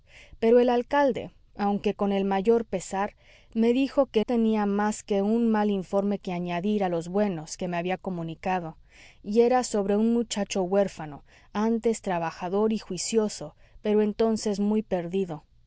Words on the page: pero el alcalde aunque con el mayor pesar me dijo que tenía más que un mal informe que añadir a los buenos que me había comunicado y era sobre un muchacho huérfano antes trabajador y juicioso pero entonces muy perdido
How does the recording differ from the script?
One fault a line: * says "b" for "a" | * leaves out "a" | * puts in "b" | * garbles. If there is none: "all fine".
all fine